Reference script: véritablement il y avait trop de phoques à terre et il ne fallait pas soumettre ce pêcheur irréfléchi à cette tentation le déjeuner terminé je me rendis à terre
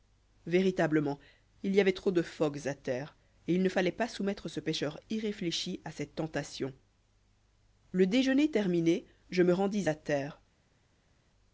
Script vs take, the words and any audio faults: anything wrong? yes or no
no